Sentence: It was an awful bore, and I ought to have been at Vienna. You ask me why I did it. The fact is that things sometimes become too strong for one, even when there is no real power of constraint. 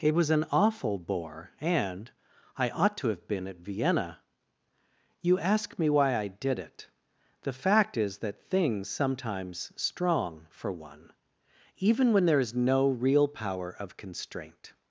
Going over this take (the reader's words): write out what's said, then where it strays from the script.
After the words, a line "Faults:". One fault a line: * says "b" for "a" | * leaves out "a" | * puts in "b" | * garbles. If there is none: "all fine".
It was an awful bore, and I ought to have been at Vienna. You ask me why I did it. The fact is that things sometimes strong for one, even when there is no real power of constraint.
Faults:
* leaves out "become too"